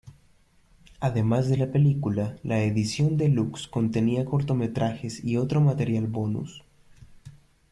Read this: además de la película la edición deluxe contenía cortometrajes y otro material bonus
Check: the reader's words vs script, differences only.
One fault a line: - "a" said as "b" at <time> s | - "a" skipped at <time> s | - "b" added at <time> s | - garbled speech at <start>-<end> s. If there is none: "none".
none